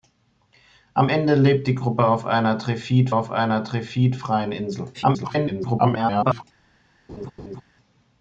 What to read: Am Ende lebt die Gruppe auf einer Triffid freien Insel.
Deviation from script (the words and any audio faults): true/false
true